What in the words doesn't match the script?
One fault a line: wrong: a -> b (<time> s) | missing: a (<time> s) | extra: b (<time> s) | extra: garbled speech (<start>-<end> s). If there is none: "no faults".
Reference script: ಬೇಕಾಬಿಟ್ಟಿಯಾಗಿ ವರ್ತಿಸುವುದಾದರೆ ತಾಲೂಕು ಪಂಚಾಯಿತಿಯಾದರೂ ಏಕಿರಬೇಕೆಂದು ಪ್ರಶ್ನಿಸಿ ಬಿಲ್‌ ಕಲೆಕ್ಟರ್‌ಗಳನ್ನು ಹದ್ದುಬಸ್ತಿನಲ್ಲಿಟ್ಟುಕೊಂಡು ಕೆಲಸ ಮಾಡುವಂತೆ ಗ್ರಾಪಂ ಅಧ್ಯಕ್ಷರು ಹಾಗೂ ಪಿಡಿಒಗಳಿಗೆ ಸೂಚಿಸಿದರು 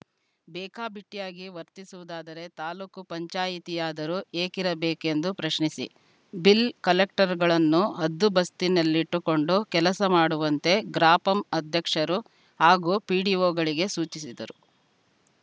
no faults